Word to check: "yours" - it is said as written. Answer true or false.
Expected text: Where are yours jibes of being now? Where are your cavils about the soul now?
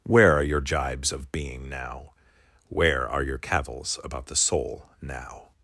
false